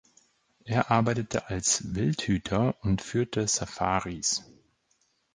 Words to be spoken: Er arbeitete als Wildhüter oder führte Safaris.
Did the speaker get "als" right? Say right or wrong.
right